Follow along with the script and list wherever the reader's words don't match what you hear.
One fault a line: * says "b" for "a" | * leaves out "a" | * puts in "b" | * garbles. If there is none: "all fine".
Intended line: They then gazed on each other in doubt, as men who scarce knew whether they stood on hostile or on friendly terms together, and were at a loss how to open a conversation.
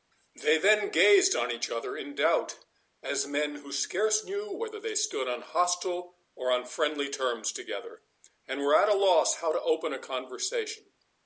all fine